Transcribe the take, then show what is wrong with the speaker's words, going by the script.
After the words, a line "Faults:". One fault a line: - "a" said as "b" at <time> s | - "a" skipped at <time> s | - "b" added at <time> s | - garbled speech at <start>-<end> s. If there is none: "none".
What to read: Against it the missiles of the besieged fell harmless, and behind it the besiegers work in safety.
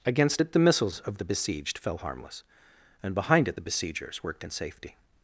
Against it the missiles of the besieged fell harmless, and behind it the besiegers worked in safety.
Faults:
- "work" said as "worked" at 4.2 s